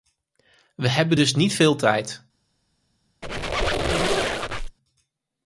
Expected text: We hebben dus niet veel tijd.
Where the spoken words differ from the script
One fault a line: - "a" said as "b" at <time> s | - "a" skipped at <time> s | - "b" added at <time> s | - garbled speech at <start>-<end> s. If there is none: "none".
none